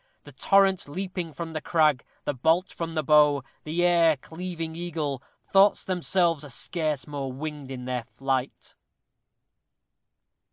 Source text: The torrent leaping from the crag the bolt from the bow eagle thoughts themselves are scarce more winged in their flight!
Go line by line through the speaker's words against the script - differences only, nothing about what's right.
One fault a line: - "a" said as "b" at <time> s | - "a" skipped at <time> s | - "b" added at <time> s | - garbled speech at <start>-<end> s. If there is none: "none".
- "the air cleaving" added at 3.6 s